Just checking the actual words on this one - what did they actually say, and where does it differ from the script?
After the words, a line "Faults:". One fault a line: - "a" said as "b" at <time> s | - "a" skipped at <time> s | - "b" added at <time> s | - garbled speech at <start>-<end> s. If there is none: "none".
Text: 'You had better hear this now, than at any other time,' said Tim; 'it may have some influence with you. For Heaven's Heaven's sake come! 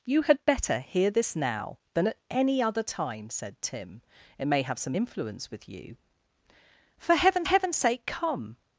'You had better hear this now, than at any other time,' said Tim; 'it may have some influence with you. For Heaven's Heaven's sake come!
Faults:
none